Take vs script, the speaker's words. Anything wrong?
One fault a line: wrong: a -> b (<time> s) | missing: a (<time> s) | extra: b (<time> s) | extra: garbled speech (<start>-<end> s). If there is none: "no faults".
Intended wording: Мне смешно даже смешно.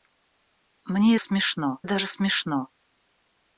no faults